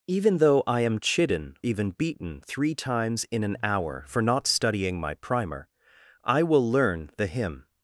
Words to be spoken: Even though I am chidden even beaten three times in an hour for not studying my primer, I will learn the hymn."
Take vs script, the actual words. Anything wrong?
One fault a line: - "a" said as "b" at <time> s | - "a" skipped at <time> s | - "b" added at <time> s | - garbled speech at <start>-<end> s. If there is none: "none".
none